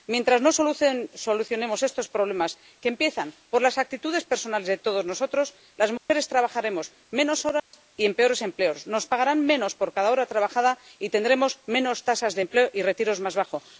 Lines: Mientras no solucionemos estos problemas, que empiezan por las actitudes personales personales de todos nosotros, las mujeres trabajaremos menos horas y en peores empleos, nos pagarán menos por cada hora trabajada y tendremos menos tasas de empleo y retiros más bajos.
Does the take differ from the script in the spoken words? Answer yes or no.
yes